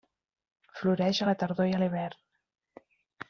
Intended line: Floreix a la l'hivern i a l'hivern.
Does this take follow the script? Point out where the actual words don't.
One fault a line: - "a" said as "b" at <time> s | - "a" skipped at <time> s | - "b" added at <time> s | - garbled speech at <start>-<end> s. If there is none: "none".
- "l'hivern" said as "tardor" at 1.4 s